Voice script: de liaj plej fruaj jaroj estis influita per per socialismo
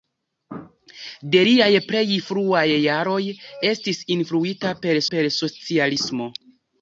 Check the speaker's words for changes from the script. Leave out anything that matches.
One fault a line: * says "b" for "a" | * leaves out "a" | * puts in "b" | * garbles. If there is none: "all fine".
all fine